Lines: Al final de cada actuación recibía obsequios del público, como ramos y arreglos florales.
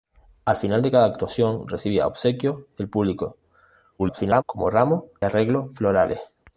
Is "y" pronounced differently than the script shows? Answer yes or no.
yes